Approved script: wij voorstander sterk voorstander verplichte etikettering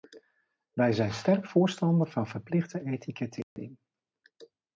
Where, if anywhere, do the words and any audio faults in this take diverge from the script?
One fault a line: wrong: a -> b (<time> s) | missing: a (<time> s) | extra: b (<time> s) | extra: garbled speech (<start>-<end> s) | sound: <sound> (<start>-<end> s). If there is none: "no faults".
wrong: voorstander -> zijn (0.9 s)
extra: van (2.1 s)
sound: dropout (3.4-3.6 s)